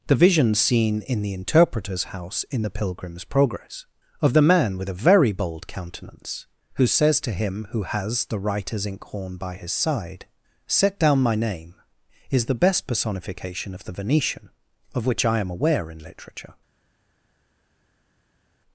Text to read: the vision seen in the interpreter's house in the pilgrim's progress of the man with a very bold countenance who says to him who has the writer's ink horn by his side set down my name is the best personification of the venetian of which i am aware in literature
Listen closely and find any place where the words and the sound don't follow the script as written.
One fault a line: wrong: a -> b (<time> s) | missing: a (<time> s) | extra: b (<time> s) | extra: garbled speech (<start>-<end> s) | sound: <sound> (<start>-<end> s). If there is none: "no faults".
no faults